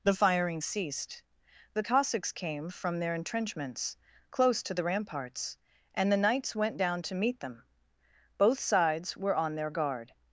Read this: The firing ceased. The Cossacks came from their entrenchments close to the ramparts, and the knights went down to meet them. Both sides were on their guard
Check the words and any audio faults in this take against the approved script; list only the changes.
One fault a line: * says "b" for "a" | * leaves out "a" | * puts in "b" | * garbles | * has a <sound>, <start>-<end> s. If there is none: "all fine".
all fine